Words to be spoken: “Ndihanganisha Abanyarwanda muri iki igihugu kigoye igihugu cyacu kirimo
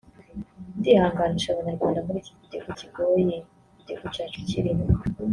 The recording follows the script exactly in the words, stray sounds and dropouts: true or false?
true